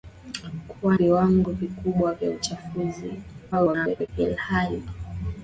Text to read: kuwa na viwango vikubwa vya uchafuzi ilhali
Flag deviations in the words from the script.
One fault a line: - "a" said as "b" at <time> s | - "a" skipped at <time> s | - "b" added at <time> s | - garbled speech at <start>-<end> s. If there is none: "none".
- "na" skipped at 1.0 s
- garbled speech at 3.5-4.1 s